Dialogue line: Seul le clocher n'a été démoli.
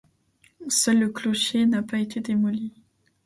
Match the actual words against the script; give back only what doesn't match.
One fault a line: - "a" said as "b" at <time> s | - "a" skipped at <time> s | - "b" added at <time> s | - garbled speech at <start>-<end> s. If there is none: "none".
- "pas" added at 1.8 s